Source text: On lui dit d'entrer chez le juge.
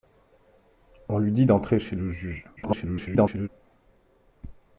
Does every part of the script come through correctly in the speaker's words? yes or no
no